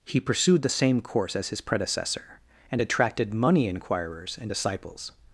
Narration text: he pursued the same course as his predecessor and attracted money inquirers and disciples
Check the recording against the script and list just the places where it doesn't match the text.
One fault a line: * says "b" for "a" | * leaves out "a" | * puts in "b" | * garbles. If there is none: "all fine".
all fine